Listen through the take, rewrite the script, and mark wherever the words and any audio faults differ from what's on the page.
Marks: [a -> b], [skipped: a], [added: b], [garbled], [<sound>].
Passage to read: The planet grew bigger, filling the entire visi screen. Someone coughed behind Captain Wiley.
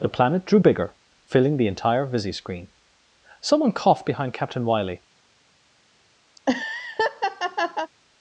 The planet [grew -> drew] bigger, filling the entire visi screen. Someone coughed behind Captain Wiley. [laugh]